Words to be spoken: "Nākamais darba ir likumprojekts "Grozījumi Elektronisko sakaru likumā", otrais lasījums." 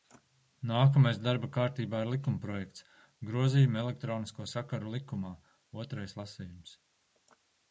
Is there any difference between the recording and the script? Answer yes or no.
yes